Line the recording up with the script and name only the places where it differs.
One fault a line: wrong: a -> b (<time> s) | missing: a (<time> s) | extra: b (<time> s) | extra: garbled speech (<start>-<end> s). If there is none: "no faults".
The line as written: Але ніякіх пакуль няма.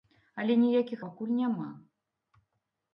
no faults